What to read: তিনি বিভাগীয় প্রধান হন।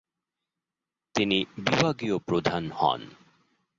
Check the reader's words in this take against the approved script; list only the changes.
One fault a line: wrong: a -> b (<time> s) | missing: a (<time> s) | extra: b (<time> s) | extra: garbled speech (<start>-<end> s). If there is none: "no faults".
no faults